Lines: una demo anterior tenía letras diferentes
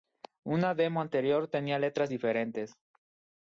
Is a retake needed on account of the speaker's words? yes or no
no